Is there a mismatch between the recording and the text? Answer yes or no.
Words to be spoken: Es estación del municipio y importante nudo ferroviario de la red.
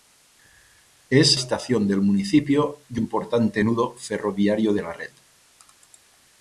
no